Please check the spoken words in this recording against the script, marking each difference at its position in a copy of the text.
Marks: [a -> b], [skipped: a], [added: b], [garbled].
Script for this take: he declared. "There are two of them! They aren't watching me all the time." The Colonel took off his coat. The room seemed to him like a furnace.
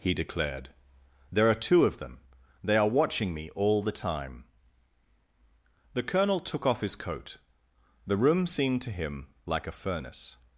he declared. "There are two of them! They [aren't -> are] watching me all the time." The Colonel took off his coat. The room seemed to him like a furnace.